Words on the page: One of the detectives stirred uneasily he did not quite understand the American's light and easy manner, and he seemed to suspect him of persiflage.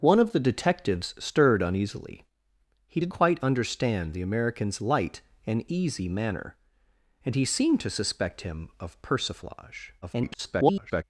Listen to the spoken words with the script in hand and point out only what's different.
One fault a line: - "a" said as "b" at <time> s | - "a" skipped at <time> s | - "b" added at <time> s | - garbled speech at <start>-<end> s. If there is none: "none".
- "not" skipped at 3.1 s
- garbled speech at 10.0-11.0 s